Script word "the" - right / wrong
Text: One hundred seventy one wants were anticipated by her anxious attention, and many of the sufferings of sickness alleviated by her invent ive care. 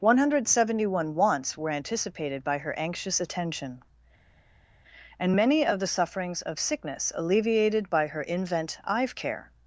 right